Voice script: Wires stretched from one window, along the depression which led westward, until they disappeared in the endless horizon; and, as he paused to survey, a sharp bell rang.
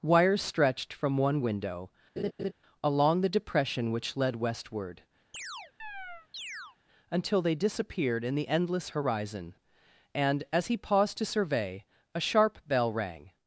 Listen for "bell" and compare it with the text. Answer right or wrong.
right